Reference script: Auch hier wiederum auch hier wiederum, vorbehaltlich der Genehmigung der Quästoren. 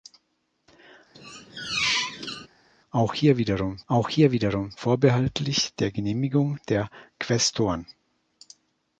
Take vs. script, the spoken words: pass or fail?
pass